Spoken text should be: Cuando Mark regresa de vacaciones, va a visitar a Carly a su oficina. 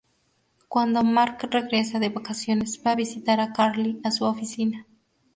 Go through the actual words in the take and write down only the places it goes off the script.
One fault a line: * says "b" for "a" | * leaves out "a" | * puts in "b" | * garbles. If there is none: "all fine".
all fine